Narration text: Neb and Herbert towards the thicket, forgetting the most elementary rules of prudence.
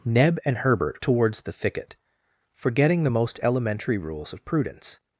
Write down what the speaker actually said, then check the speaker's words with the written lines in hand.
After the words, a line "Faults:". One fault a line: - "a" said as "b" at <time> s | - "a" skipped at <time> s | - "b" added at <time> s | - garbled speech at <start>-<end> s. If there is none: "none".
Neb and Herbert towards the thicket, forgetting the most elementary rules of prudence.
Faults:
none